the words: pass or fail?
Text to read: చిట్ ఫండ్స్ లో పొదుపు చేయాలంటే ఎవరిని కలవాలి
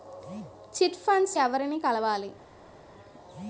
fail